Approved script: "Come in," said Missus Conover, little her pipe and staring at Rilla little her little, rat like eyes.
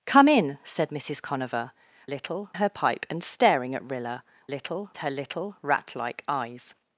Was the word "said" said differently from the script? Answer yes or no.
no